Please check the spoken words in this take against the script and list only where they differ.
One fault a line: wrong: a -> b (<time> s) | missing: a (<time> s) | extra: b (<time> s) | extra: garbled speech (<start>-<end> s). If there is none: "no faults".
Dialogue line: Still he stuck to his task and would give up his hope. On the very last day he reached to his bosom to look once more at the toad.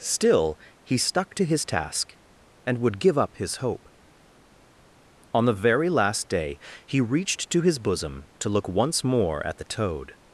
no faults